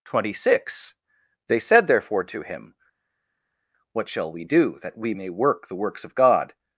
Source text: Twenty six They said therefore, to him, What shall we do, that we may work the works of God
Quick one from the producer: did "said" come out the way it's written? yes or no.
yes